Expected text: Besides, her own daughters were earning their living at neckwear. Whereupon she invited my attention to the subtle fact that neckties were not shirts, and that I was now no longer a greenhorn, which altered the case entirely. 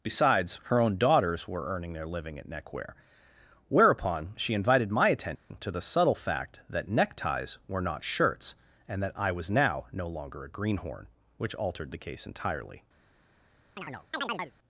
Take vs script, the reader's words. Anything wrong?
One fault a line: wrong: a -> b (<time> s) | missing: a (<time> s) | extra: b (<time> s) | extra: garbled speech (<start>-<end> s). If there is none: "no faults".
no faults